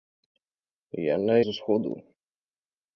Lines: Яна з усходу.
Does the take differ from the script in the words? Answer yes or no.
no